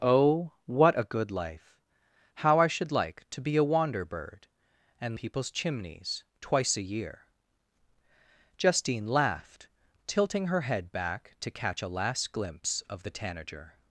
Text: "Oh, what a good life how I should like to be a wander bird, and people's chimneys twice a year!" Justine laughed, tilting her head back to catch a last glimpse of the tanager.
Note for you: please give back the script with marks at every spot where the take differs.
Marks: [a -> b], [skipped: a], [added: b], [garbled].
"Oh, what a good life how I should like to be a wander bird, and people's chimneys twice a year!" Justine laughed, tilting her head back to catch a last glimpse of the tanager.